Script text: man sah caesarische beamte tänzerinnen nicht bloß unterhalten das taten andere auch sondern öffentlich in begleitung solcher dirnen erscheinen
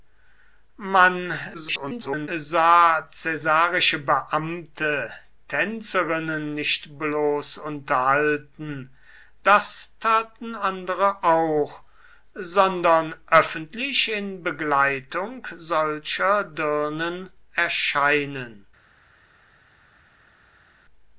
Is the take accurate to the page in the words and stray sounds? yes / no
no